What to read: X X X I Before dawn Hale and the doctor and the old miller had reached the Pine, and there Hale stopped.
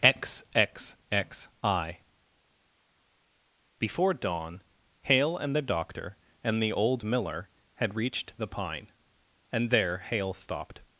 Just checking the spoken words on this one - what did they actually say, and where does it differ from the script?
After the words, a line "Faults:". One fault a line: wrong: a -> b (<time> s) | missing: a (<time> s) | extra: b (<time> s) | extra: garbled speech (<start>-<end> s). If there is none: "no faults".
X X X I Before dawn Hale and the doctor and the old miller had reached the Pine, and there Hale stopped.
Faults:
no faults